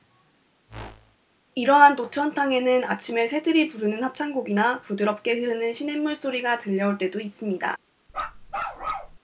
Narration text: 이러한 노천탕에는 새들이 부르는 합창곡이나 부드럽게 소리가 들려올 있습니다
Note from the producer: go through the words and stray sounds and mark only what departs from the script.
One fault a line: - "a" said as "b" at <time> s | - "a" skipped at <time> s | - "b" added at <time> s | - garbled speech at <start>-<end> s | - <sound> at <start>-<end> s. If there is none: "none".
- whoosh at 0.7-1.2 s
- "아침에" added at 2.8 s
- "흐르는 시냇물" added at 5.3 s
- "때도" added at 7.0 s
- bark at 8.1-9.2 s